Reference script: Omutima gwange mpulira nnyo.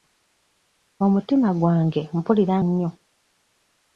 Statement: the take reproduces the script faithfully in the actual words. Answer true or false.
true